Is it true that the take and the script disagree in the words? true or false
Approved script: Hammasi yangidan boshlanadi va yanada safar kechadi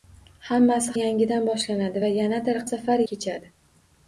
false